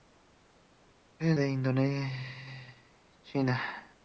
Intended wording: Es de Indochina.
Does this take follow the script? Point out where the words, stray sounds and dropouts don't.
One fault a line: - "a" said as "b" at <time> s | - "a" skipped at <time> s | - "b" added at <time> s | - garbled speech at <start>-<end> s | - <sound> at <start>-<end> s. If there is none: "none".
none